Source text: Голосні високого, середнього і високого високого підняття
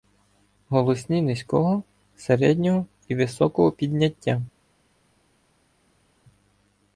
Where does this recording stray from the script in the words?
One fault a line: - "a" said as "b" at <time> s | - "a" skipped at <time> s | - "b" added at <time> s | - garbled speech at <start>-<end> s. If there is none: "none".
- "високого" said as "низького" at 1.2 s
- "високого" skipped at 3.7 s